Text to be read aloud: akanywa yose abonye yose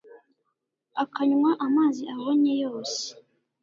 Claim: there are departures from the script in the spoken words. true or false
true